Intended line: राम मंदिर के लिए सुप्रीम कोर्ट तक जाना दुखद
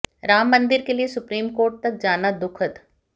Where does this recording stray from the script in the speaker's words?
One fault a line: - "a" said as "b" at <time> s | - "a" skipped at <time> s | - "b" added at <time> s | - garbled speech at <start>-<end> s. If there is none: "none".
none